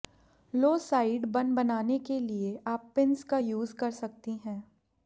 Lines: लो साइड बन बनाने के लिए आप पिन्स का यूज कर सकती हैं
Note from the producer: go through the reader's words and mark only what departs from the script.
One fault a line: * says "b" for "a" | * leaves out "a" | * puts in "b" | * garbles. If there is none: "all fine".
all fine